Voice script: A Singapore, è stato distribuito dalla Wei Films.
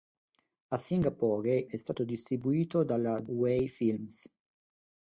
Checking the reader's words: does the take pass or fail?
pass